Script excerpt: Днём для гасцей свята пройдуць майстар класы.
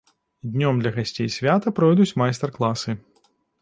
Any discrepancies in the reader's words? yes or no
no